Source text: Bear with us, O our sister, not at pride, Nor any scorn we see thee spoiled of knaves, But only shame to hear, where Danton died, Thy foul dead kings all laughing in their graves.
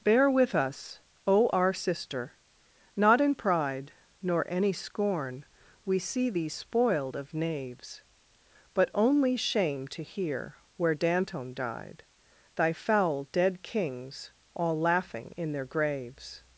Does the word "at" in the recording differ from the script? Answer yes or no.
yes